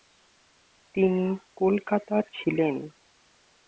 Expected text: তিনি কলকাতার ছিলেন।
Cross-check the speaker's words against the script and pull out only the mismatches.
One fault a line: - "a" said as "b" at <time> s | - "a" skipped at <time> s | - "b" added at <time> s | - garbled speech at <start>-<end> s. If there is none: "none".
none